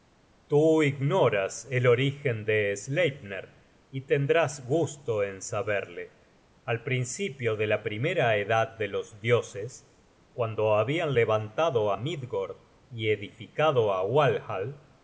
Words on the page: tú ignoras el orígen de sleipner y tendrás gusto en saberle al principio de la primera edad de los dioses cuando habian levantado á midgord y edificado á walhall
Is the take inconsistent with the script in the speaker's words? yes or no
no